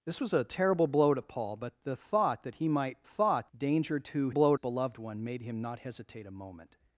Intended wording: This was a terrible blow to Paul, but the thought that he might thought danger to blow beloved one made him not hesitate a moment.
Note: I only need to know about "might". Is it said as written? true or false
true